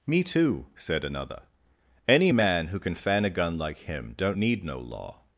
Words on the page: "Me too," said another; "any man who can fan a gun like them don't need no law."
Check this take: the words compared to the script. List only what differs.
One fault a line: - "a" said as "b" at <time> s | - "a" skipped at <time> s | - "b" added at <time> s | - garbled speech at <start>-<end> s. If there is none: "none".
- "them" said as "him" at 3.8 s